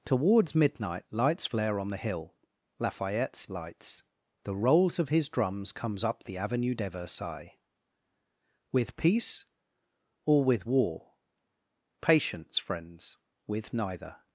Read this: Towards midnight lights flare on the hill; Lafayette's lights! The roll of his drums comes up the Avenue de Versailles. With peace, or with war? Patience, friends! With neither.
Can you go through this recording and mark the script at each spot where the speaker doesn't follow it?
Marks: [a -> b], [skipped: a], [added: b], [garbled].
Towards midnight lights flare on the hill; Lafayette's lights! The [roll -> rolls] of his drums comes up the Avenue de Versailles. With peace, or with war? Patience, friends! With neither.